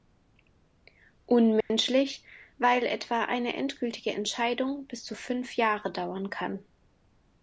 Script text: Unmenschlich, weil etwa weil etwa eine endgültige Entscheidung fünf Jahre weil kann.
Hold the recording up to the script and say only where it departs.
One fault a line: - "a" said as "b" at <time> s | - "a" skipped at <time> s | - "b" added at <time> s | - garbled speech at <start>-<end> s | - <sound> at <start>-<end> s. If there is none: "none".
- dropout at 1.6-1.7 s
- "weil etwa" skipped at 3.2 s
- "bis zu" added at 4.9 s
- "weil" said as "dauern" at 5.9 s